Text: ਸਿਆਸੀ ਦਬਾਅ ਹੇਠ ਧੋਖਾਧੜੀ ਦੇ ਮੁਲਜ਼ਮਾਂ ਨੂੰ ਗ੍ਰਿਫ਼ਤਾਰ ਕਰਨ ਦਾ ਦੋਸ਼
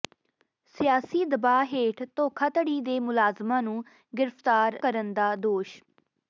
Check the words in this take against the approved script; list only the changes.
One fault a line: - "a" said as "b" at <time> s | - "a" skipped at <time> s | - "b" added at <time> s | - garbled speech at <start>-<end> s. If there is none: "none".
none